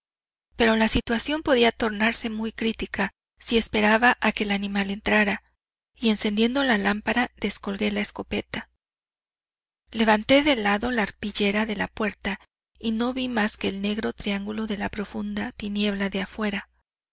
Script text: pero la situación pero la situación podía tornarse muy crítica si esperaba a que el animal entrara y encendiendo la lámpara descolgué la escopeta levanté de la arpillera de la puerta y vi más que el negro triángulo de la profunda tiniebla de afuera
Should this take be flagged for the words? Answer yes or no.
yes